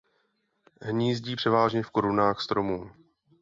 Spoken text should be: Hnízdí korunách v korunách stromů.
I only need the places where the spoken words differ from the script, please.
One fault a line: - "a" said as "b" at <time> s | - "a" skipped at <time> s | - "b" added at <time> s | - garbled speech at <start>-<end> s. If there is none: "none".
- "korunách" said as "převážně" at 1.3 s